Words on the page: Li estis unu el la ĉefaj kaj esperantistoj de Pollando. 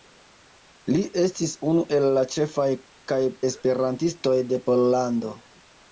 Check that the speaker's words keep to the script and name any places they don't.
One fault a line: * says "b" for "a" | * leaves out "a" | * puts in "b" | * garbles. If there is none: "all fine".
all fine